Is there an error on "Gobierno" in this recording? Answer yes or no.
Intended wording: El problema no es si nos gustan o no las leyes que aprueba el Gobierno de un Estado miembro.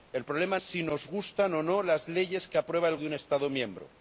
yes